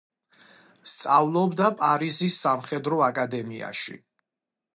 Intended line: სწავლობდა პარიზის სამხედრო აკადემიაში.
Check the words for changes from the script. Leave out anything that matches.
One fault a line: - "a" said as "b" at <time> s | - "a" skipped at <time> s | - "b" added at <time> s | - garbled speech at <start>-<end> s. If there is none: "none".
none